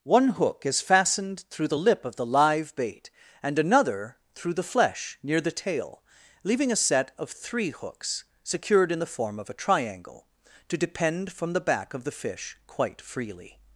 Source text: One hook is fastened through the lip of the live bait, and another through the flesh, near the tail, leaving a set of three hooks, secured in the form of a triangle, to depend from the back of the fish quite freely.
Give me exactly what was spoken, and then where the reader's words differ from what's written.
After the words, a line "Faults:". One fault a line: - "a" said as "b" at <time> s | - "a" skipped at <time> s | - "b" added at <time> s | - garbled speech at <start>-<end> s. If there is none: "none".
One hook is fastened through the lip of the live bait, and another through the flesh, near the tail, leaving a set of three hooks, secured in the form of a triangle, to depend from the back of the fish quite freely.
Faults:
none